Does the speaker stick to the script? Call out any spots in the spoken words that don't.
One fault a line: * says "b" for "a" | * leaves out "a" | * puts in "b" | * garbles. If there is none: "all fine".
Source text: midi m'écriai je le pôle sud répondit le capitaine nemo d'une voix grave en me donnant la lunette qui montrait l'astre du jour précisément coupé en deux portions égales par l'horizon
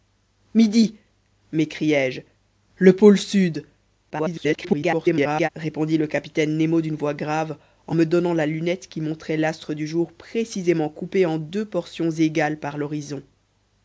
* garbles